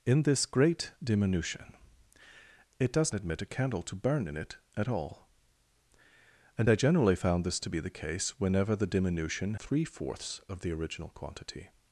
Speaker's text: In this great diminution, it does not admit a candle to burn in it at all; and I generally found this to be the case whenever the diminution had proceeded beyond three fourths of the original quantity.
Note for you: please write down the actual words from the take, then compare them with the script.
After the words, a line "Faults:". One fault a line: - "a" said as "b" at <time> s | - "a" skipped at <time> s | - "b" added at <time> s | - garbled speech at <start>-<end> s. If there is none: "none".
In this great diminution, it does admit a candle to burn in it at all; and I generally found this to be the case whenever the diminution three fourths of the original quantity.
Faults:
- "not" skipped at 3.1 s
- "had proceeded beyond" skipped at 9.5 s